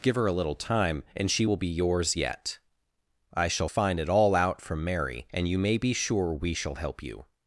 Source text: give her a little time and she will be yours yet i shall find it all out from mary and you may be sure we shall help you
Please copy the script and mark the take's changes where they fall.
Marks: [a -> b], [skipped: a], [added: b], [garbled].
give her a little time and she will be yours yet i shall find it all out from mary and you may be sure we shall help you